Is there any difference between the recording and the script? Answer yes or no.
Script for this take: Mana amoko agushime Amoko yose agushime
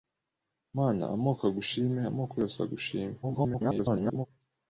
yes